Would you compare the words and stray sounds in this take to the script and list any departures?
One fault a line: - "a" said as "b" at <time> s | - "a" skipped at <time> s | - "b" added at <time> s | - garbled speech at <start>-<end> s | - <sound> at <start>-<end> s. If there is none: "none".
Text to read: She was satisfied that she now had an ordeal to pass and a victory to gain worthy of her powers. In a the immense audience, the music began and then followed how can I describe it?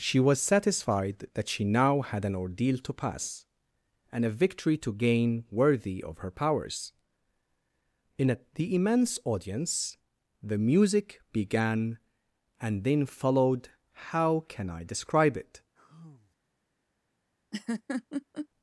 - sigh at 15.8-16.4 s
- laugh at 17.5-18.5 s